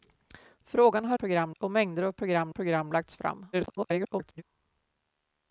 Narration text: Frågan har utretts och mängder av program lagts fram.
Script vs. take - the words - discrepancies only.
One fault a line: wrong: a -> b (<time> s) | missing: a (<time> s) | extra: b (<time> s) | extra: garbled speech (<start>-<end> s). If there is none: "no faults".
wrong: utretts -> program (1.1 s)
extra: program (2.5 s)
extra: garbled speech (3.5-4.4 s)